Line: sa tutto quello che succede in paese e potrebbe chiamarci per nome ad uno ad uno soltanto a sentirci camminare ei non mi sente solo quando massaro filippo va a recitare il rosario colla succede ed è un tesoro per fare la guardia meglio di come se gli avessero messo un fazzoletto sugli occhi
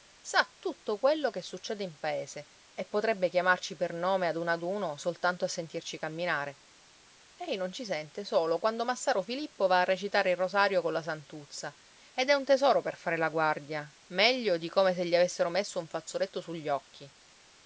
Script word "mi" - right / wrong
wrong